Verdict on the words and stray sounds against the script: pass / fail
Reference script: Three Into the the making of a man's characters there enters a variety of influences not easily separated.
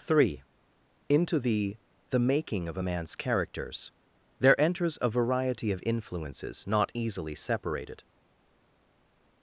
pass